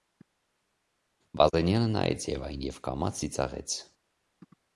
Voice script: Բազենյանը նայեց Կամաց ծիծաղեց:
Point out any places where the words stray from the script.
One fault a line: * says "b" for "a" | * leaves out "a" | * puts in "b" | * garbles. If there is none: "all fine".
* puts in "Եվային և"